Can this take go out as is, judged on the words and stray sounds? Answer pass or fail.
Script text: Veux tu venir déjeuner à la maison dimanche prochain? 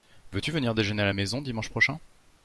pass